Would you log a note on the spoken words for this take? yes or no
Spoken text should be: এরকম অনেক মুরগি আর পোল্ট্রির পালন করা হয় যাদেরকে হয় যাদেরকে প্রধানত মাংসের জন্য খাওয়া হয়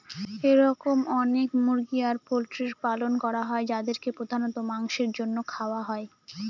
yes